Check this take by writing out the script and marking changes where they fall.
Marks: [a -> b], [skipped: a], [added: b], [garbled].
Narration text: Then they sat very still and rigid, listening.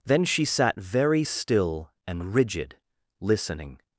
Then [they -> she] sat very still and rigid, listening.